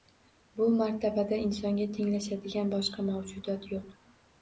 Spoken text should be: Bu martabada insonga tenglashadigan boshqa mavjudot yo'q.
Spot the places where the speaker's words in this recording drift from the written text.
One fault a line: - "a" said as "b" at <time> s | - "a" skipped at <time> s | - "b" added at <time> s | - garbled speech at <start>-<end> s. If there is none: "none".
none